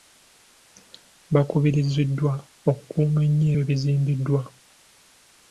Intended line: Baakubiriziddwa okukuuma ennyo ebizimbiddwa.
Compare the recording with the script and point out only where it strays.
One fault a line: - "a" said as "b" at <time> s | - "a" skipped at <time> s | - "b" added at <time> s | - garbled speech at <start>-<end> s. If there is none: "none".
none